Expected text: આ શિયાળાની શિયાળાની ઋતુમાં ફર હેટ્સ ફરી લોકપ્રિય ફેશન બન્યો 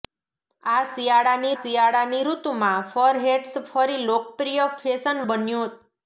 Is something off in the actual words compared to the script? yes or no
no